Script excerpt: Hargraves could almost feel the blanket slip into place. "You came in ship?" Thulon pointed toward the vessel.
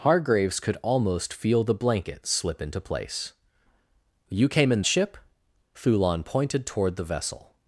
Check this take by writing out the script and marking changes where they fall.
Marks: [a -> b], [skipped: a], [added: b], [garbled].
Hargraves could almost feel the blanket slip into place. "You came in ship?" Thulon pointed toward the vessel.